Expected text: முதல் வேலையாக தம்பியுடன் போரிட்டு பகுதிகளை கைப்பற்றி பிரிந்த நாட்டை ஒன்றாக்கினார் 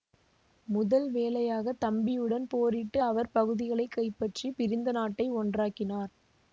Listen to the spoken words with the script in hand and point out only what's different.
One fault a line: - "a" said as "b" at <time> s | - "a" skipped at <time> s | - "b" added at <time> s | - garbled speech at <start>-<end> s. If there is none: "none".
- "அவர்" added at 3.0 s